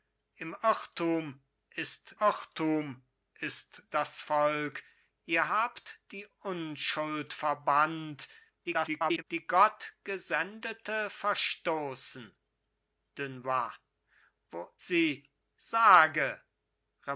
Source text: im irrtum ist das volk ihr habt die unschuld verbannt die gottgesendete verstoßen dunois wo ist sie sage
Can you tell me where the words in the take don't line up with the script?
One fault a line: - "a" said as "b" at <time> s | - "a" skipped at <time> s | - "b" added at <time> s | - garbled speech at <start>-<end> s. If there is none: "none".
- "irrtum ist" added at 2.2 s
- garbled speech at 8.6-9.2 s
- "ist" skipped at 14.7 s